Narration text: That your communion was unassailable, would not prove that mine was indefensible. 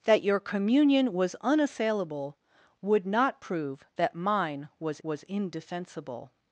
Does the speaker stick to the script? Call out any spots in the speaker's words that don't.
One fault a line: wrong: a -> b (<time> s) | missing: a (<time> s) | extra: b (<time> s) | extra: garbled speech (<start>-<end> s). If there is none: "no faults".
extra: was (5.0 s)